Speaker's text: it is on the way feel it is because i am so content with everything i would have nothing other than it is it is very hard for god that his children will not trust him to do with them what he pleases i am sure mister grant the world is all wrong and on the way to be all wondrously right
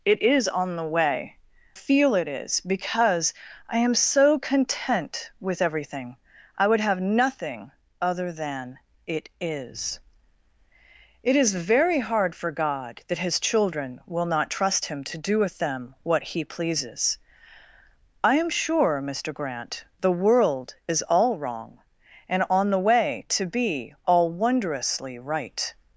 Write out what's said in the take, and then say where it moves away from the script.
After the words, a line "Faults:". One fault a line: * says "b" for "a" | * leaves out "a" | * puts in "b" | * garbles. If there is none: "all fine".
it is on the way feel it is because i am so content with everything i would have nothing other than it is it is very hard for god that his children will not trust him to do with them what he pleases i am sure mister grant the world is all wrong and on the way to be all wondrously right
Faults:
all fine